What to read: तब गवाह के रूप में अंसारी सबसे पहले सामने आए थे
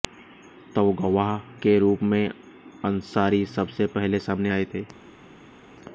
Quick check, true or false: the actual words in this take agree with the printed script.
true